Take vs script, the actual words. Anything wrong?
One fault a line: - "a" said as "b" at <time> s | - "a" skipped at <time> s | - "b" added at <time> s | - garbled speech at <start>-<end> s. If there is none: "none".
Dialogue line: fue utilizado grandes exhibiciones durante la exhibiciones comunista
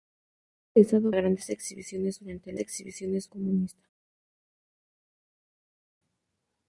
none